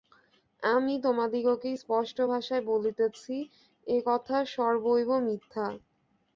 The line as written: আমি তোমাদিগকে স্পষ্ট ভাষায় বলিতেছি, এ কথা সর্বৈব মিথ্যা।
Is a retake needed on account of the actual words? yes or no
no